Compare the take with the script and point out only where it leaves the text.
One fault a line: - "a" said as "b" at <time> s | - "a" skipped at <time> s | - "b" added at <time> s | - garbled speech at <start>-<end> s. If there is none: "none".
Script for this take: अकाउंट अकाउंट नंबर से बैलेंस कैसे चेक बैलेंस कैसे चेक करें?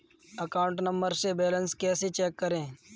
- "अकाउंट" skipped at 0.8 s
- "बैलेंस कैसे चेक" skipped at 2.4 s